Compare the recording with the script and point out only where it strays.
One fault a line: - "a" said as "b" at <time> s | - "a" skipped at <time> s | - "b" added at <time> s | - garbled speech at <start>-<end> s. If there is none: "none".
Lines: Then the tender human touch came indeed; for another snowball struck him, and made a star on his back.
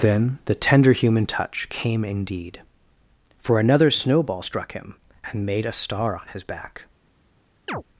none